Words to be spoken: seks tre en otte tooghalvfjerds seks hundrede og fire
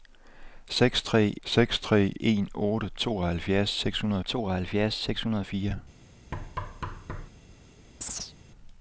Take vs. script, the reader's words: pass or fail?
fail